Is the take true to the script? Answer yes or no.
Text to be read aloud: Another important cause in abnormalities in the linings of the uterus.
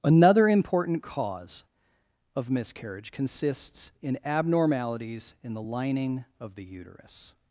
no